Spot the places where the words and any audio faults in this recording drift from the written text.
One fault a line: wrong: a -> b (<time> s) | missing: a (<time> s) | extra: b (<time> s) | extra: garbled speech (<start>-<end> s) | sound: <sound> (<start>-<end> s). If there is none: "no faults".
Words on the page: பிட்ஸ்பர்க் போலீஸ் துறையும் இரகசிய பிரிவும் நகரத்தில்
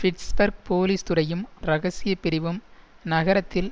no faults